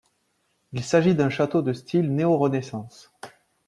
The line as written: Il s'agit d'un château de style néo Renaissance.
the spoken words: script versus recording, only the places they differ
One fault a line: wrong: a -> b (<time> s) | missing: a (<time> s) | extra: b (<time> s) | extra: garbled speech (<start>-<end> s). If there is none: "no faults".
no faults